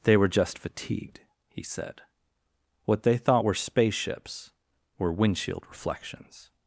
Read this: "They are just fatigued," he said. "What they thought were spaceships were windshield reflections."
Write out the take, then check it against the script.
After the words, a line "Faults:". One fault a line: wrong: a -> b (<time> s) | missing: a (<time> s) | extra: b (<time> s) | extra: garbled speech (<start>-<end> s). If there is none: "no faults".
"They were just fatigued," he said. "What they thought were spaceships were windshield reflections."
Faults:
wrong: are -> were (0.2 s)